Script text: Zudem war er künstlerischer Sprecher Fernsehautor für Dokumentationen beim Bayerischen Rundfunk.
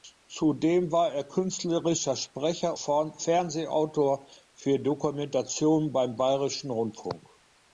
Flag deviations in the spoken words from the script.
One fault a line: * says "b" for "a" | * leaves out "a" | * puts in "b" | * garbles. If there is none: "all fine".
all fine